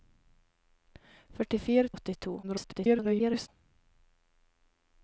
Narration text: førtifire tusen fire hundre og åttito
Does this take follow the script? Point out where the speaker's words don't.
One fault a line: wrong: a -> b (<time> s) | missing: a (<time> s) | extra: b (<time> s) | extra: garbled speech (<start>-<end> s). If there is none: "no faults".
missing: tusen fire hundre (1.9 s)
extra: garbled speech (2.4-3.5 s)